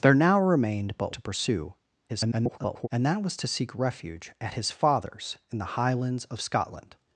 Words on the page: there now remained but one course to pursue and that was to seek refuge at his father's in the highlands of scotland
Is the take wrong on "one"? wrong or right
wrong